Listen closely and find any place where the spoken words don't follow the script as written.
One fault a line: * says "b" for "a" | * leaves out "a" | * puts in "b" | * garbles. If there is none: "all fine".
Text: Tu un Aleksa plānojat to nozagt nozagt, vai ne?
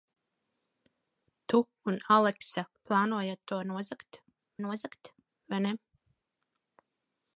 all fine